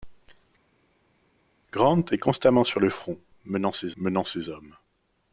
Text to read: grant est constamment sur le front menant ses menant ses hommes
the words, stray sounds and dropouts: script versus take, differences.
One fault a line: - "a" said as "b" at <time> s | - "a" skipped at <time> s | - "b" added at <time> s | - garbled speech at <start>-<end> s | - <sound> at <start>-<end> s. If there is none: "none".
none